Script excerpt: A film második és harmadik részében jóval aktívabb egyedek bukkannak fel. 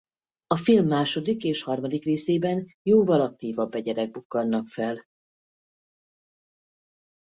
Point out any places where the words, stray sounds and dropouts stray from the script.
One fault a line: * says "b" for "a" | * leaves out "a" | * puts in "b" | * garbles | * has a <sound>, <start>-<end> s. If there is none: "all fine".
all fine